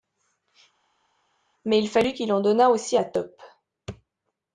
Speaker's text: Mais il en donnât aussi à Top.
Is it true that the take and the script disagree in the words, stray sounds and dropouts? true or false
true